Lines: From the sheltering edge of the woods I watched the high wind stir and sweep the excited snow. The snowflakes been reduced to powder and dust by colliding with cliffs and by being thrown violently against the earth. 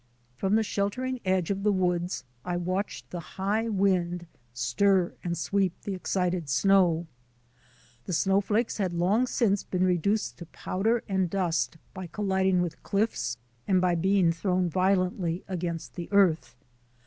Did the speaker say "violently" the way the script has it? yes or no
yes